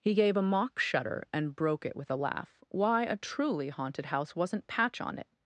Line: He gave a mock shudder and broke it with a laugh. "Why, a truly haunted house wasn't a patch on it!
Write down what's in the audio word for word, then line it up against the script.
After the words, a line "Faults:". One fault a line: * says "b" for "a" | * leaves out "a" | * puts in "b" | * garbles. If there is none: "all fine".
He gave a mock shudder and broke it with a laugh. "Why, a truly haunted house wasn't patch on it!
Faults:
* leaves out "a"